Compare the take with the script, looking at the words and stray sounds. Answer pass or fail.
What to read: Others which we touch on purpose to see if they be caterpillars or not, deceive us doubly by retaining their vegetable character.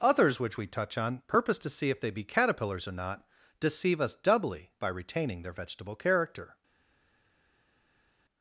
pass